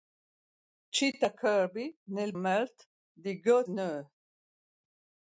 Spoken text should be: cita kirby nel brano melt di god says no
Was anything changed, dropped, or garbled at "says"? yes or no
yes